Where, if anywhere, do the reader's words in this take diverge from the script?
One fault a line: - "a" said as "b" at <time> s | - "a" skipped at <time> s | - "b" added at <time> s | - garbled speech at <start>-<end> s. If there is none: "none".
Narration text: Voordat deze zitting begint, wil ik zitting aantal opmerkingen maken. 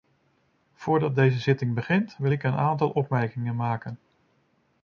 - "zitting" said as "een" at 2.4 s